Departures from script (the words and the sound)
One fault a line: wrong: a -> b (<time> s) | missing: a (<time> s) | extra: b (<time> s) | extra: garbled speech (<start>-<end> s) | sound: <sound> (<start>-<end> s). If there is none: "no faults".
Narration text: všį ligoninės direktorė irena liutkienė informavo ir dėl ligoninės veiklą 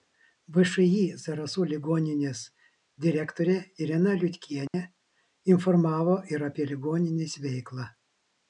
extra: zarasų (1.2 s)
sound: dropout (4.7-4.7 s)
wrong: dėl -> apie (6.5 s)